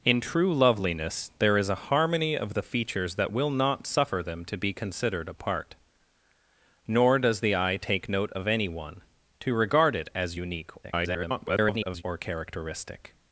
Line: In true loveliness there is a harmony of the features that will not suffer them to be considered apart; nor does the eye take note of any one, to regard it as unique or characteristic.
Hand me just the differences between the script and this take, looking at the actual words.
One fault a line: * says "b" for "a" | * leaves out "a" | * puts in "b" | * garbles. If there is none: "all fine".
* garbles